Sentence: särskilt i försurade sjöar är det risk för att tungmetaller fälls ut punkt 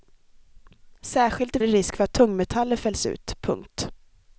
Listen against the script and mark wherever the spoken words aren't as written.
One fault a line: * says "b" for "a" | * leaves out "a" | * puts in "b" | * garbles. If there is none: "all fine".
* leaves out "försurade sjöar är"